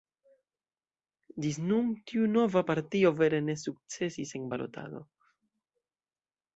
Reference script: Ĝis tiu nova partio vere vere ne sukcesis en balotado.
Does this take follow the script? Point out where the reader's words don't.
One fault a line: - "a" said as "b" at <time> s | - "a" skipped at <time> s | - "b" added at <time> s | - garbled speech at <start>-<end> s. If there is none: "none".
- "nun" added at 1.6 s
- "vere" skipped at 3.5 s